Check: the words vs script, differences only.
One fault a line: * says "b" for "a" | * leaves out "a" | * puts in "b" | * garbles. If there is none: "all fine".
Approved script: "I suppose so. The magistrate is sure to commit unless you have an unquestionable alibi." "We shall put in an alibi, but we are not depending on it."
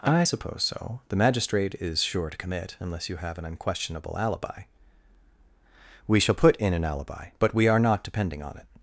all fine